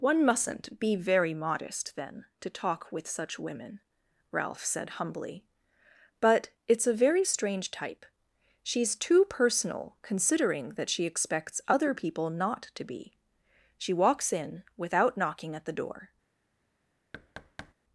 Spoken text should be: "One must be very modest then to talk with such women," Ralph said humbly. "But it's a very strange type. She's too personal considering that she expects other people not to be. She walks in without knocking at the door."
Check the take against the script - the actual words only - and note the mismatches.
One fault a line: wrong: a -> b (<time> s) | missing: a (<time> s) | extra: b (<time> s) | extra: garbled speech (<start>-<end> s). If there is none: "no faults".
wrong: must -> mustn't (0.2 s)